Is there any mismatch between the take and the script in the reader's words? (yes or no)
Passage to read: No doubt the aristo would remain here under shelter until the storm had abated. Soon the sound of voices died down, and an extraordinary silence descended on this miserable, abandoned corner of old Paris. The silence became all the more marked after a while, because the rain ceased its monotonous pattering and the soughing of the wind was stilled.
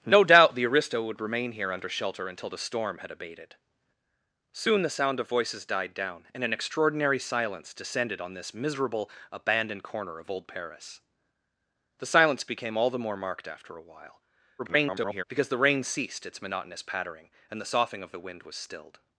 yes